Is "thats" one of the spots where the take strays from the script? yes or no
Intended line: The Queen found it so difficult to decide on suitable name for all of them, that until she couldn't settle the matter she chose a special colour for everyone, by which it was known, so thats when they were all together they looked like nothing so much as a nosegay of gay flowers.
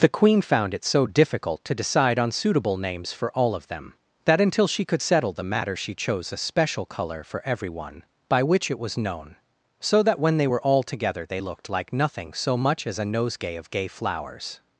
yes